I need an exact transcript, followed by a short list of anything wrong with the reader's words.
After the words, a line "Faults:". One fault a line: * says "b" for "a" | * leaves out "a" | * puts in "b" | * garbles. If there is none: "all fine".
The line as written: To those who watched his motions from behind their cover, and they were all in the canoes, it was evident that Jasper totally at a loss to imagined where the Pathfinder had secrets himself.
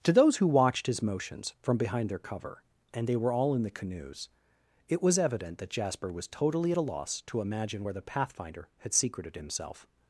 To those who watched his motions from behind their cover, and they were all in the canoes, it was evident that Jasper was totally at a loss to imagine where the Pathfinder had secreted himself.
Faults:
* puts in "was"
* says "imagine" for "imagined"
* says "secreted" for "secrets"